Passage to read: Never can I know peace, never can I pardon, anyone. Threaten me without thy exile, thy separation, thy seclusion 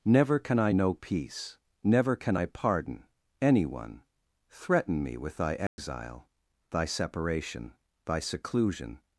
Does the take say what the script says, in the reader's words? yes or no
no